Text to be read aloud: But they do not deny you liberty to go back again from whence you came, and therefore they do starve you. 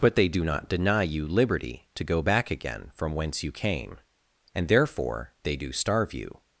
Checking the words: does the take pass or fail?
pass